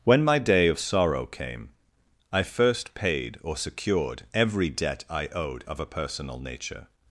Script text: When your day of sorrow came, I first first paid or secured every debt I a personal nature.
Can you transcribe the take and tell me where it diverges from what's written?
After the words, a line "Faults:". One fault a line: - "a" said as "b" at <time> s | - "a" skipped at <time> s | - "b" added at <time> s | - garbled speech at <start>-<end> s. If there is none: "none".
When my day of sorrow came, I first paid or secured every debt I owed of a personal nature.
Faults:
- "your" said as "my" at 0.2 s
- "first" skipped at 3.0 s
- "owed of" added at 5.3 s